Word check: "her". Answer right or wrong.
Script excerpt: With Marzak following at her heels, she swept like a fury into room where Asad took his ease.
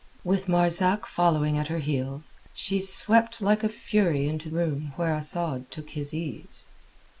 right